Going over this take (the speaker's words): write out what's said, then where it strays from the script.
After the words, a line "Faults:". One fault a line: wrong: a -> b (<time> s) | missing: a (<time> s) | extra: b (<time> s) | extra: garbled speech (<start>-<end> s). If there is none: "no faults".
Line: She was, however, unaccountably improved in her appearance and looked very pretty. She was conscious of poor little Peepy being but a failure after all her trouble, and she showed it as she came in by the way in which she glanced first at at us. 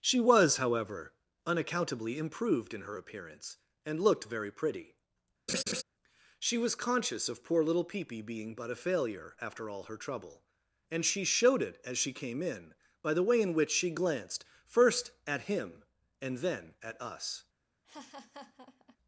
She was, however, unaccountably improved in her appearance and looked very pretty. She was conscious of poor little Peepy being but a failure after all her trouble, and she showed it as she came in by the way in which she glanced first at him and then at us.
Faults:
extra: him and then (15.4 s)